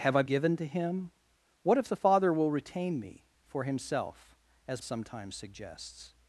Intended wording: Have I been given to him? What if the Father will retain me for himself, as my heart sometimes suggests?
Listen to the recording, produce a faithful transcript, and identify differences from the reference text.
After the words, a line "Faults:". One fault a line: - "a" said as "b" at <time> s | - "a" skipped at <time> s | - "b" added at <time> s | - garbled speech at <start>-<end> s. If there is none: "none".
Have I given to him? What if the Father will retain me for himself, as sometimes suggests?
Faults:
- "been" skipped at 0.2 s
- "my heart" skipped at 4.8 s